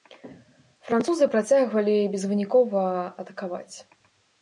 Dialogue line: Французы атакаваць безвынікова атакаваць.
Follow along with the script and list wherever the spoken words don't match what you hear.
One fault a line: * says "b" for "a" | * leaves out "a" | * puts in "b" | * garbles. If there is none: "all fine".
* says "працягвалі" for "атакаваць"